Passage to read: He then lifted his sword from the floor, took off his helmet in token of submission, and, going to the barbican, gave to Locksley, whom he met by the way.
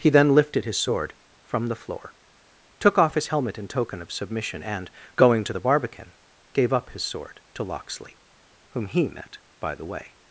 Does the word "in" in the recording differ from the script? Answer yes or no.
no